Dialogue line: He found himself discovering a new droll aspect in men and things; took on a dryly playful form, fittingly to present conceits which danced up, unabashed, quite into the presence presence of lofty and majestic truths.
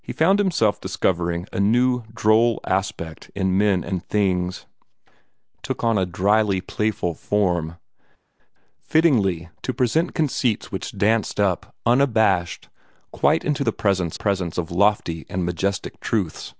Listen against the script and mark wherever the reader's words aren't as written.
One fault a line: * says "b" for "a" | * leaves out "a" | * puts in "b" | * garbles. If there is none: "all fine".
all fine